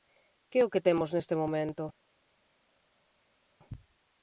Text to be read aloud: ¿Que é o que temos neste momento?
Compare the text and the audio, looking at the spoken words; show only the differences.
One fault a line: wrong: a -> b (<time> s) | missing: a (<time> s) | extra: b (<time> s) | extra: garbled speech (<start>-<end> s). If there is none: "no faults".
no faults